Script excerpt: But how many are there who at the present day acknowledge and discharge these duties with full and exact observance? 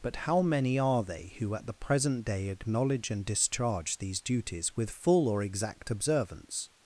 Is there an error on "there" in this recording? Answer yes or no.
yes